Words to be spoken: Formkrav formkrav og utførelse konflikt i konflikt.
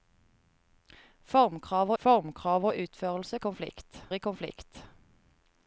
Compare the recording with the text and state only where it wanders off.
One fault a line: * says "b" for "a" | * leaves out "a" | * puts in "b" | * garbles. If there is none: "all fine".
all fine